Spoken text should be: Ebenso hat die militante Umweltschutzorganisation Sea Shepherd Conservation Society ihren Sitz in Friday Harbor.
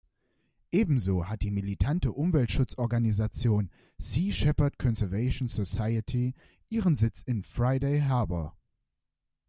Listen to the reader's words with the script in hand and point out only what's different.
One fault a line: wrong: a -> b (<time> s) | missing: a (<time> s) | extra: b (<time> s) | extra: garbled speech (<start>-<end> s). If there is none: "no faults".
no faults